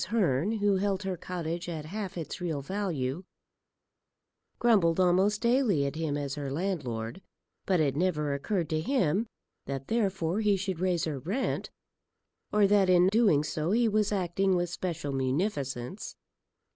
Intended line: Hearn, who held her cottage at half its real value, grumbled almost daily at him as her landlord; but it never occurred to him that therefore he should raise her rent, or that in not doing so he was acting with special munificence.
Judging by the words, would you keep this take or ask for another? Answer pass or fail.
fail